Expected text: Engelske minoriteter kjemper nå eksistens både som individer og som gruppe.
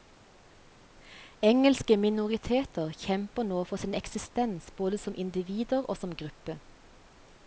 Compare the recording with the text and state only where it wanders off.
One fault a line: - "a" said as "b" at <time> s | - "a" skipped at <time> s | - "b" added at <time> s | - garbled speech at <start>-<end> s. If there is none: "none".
- "for sin" added at 3.7 s